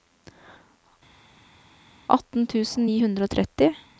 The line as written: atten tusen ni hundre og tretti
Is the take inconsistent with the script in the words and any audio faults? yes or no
no